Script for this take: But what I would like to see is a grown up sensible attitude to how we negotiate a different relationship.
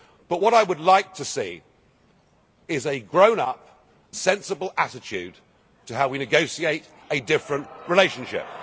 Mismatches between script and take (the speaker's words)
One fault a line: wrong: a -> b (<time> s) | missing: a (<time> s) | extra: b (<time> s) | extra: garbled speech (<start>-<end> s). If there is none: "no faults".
no faults